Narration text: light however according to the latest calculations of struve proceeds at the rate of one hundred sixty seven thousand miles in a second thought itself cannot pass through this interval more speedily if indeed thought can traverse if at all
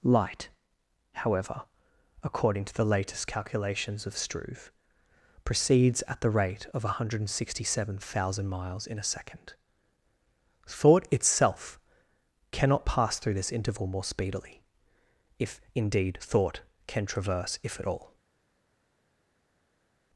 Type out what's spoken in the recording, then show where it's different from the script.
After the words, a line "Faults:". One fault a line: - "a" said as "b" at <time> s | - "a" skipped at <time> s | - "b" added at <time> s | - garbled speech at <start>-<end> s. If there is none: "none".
light however according to the latest calculations of struve proceeds at the rate of one hundred sixty seven thousand miles in a second thought itself cannot pass through this interval more speedily if indeed thought can traverse if at all
Faults:
none